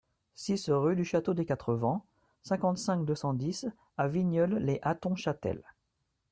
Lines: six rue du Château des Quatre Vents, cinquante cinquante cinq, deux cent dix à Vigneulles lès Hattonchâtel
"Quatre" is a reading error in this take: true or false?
false